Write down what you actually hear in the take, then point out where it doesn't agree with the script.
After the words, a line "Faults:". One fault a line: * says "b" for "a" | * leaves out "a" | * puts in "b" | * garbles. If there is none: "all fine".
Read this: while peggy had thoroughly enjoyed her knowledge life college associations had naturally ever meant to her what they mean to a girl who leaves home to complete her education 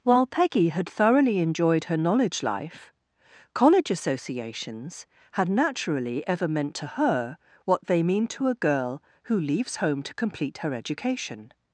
while peggy had thoroughly enjoyed her knowledge life college associations had naturally ever meant to her what they mean to a girl who leaves home to complete her education
Faults:
all fine